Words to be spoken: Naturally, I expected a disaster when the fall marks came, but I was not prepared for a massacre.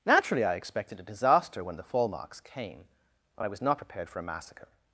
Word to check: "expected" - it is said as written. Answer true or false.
true